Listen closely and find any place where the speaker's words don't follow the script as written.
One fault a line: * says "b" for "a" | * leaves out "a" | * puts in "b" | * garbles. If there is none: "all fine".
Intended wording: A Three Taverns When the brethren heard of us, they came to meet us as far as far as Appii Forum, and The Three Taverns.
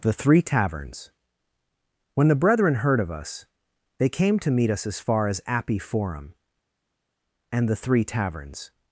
* says "The" for "A"
* leaves out "far as"